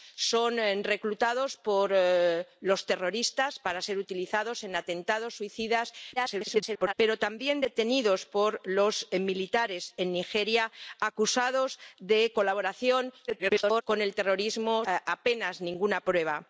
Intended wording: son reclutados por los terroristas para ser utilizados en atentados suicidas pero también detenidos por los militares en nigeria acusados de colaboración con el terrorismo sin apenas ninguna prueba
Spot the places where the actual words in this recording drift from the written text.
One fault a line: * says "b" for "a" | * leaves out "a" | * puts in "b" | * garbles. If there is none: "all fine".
* garbles
* garbles
* leaves out "sin"